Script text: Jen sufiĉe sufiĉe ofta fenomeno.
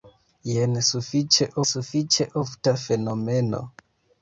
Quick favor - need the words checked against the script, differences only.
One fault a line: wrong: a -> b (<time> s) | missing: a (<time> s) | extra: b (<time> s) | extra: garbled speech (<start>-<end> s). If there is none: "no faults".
no faults